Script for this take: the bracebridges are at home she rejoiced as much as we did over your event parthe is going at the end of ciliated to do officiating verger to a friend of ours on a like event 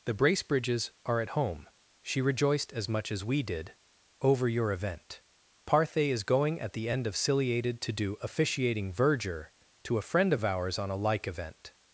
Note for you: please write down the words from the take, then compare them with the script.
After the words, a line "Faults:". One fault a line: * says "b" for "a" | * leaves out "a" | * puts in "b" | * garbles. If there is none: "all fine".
the bracebridges are at home she rejoiced as much as we did over your event parthe is going at the end of ciliated to do officiating verger to a friend of ours on a like event
Faults:
all fine